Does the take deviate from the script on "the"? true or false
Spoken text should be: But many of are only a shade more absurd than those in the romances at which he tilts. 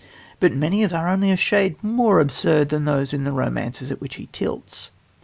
false